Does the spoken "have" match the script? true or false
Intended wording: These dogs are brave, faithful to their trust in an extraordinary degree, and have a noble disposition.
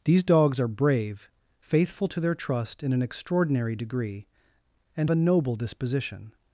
false